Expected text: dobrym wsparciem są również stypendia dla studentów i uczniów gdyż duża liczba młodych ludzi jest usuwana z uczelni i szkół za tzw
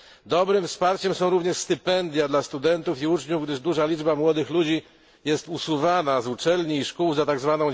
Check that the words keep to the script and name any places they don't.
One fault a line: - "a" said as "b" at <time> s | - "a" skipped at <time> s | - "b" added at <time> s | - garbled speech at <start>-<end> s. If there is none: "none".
none